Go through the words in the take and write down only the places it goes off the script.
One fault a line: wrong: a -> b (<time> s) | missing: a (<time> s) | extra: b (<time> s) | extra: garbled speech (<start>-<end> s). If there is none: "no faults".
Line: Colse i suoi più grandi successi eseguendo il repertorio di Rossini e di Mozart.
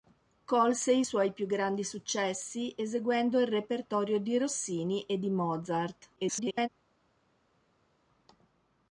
extra: garbled speech (6.2-6.7 s)